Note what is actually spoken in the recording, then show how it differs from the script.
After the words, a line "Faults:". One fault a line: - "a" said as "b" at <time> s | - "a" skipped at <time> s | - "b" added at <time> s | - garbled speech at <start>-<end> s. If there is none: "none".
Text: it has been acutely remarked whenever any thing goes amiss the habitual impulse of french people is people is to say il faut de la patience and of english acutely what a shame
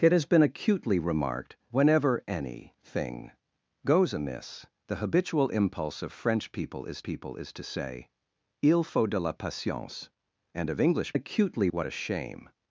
it has been acutely remarked whenever any thing goes amiss the habitual impulse of french people is people is to say il faut de la patience and of english acutely what a shame
Faults:
none